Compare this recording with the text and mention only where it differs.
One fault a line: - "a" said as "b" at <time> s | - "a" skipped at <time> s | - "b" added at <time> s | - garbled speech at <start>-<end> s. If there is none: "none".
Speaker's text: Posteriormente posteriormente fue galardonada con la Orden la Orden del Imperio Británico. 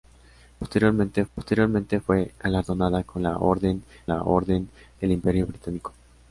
none